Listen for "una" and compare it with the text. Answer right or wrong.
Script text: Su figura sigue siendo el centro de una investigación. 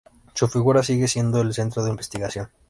wrong